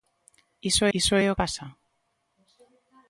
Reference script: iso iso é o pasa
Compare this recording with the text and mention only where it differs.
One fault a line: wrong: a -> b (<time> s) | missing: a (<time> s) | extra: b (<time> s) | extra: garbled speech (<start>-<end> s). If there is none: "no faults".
no faults